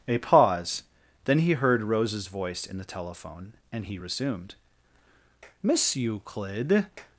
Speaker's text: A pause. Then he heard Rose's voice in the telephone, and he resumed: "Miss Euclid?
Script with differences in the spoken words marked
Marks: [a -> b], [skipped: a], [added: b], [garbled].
A pause. Then he heard Rose's voice in the telephone, and he resumed: "Miss Euclid?